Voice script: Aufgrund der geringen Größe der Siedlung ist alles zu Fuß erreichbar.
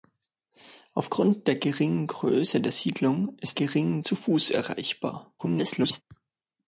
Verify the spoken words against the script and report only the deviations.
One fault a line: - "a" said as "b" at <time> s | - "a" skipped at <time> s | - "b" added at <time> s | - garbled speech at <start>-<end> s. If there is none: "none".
- "alles" said as "geringen" at 3.5 s
- garbled speech at 5.4-6.0 s